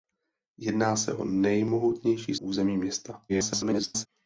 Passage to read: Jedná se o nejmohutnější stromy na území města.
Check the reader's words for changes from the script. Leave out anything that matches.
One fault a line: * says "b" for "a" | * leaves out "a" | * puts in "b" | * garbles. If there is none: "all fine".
* leaves out "stromy na"
* garbles